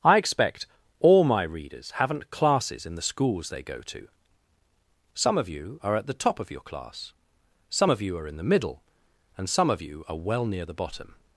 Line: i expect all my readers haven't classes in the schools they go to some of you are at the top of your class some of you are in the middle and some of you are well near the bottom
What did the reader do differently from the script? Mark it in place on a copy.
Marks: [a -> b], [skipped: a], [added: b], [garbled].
i expect all my readers haven't classes in the schools they go to some of you are at the top of your class some of you are in the middle and some of you are well near the bottom